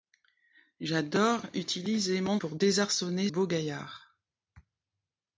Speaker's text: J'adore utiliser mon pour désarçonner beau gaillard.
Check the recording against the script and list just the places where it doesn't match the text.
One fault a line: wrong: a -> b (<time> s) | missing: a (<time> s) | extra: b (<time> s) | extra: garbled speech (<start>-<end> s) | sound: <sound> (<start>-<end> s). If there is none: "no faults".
no faults